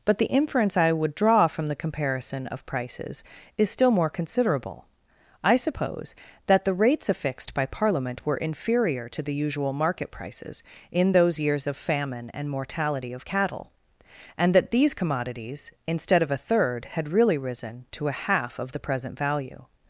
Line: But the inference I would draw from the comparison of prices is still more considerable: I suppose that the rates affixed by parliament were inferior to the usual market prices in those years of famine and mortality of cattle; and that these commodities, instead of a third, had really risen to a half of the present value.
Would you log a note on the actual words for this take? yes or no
no